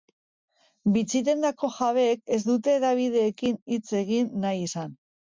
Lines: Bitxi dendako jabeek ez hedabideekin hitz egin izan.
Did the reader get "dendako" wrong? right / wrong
right